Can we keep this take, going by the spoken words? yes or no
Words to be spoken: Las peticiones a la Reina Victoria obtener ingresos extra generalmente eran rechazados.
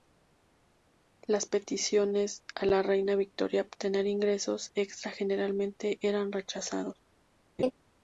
yes